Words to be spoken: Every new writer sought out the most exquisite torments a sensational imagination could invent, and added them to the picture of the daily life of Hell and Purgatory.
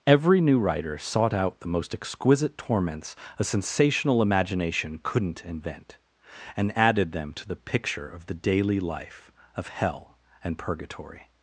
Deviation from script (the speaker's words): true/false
true